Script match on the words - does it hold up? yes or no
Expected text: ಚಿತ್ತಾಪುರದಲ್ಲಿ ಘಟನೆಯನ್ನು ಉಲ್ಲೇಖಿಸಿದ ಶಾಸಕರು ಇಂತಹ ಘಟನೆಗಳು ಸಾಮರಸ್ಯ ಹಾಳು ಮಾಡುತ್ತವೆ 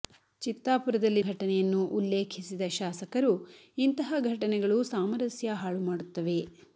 yes